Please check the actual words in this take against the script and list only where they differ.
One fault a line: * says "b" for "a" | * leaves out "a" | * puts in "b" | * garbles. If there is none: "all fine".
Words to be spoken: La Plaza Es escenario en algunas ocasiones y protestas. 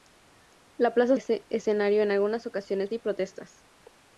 all fine